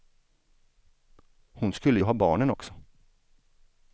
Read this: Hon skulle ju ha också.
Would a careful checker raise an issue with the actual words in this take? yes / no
yes